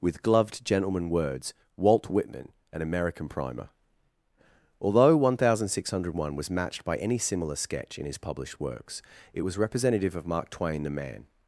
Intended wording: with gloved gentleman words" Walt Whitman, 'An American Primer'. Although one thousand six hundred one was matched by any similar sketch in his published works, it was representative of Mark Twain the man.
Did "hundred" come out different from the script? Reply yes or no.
no